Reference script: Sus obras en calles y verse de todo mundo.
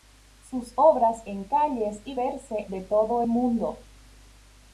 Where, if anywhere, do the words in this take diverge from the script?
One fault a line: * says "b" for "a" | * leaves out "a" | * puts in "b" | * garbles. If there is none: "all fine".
all fine